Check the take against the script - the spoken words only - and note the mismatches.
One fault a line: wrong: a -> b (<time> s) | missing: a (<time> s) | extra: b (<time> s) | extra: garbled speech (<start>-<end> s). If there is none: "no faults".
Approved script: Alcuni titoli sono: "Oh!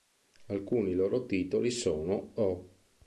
extra: loro (0.9 s)